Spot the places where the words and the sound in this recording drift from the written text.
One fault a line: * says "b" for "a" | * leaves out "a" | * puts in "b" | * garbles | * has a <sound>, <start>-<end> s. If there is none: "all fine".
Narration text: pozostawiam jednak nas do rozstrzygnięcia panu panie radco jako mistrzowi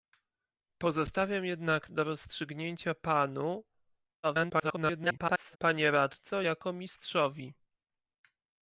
* leaves out "nas"
* garbles